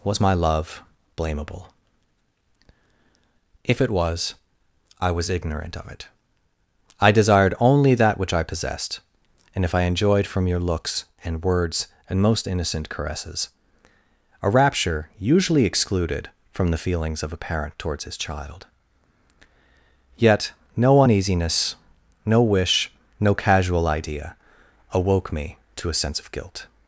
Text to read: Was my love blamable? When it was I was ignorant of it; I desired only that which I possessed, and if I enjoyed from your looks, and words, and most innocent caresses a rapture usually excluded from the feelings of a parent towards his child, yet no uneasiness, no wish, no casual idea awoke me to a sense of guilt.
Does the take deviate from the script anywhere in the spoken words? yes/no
yes